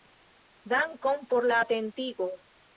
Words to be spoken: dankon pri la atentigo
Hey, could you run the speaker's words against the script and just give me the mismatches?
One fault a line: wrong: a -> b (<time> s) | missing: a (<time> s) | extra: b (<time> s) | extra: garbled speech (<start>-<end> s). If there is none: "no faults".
wrong: pri -> por (1.3 s)